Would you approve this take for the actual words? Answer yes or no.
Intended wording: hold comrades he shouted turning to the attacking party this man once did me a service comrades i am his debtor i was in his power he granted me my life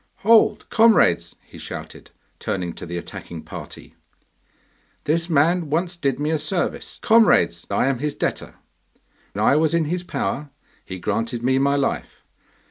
yes